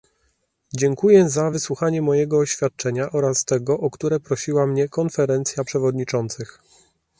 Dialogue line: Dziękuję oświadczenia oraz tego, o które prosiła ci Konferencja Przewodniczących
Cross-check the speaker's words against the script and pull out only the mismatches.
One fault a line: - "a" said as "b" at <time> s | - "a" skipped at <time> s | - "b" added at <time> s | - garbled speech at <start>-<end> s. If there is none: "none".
- "za wysłuchanie mojego" added at 1.3 s
- "ci" said as "mnie" at 4.7 s